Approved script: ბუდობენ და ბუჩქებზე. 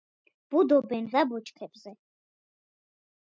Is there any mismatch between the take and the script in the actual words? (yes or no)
no